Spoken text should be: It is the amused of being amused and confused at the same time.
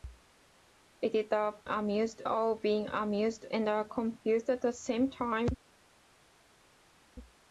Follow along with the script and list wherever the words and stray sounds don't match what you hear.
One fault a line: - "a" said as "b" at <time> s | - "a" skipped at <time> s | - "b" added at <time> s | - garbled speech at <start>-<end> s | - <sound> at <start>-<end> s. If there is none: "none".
none